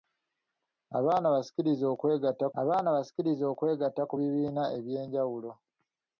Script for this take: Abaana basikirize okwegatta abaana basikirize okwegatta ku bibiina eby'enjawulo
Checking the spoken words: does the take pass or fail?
pass